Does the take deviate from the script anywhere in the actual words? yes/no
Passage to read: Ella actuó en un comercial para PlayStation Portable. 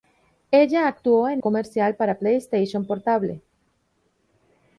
yes